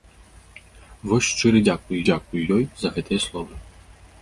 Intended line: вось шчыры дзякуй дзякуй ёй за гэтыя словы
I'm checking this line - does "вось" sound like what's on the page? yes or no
yes